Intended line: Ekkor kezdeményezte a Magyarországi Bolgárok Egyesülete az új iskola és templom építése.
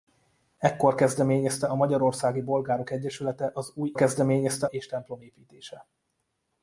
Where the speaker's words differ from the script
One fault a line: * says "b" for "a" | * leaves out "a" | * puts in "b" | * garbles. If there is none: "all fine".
* says "kezdeményezte" for "iskola"